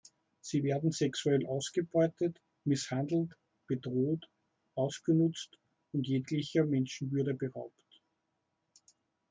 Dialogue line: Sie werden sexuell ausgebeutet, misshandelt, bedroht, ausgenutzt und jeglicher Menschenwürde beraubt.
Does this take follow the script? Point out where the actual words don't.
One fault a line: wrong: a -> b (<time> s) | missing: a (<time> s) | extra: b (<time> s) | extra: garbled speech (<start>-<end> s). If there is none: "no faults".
no faults